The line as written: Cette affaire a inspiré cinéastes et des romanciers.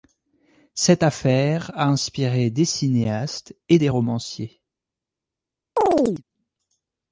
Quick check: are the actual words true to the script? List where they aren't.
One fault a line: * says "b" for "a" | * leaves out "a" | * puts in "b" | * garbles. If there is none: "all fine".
* puts in "des"